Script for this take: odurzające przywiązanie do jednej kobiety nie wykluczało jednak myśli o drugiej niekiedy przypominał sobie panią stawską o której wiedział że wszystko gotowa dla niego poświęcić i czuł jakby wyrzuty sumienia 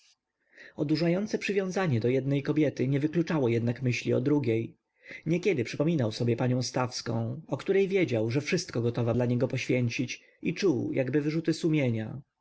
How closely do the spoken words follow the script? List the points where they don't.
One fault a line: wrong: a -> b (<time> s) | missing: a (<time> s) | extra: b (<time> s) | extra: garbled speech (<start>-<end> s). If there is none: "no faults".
no faults